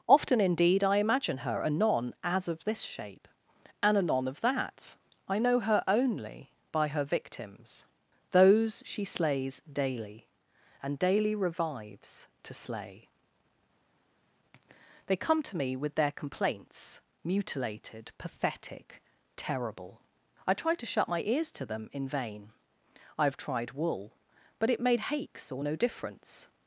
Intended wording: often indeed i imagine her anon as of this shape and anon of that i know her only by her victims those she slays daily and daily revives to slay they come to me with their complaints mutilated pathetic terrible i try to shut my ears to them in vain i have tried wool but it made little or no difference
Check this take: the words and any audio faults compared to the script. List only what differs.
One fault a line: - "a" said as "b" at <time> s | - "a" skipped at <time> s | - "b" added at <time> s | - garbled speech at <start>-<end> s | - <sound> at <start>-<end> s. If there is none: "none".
- "little" said as "hakes" at 25.0 s